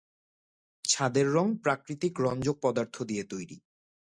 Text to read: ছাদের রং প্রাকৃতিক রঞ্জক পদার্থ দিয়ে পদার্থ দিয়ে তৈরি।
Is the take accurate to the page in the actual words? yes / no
no